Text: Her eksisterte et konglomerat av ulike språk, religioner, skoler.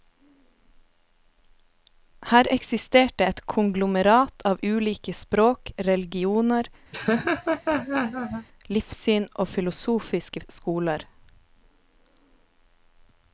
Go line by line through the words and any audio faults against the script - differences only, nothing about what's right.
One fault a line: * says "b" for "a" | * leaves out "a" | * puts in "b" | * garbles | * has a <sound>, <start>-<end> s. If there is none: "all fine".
* has a laugh, 6.9-8.5 s
* puts in "livssyn og filosofiske"